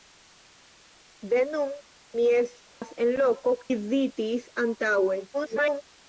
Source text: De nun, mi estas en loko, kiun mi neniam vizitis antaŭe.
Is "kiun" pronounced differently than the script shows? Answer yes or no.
yes